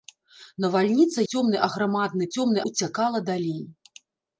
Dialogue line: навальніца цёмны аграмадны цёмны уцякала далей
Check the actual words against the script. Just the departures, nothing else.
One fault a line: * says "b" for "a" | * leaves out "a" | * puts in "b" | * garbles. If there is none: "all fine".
all fine